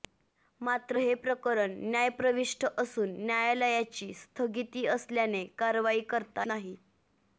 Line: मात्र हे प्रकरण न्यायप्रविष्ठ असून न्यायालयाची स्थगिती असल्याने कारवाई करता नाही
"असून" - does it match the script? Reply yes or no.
yes